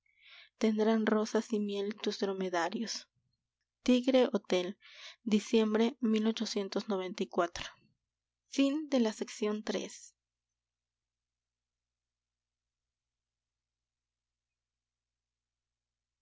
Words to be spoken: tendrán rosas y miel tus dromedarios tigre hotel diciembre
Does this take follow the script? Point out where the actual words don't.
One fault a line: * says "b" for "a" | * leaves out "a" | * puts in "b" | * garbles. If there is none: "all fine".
all fine